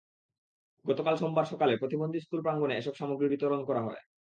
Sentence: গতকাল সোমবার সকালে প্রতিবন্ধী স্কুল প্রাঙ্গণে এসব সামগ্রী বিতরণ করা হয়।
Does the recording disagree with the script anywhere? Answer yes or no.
no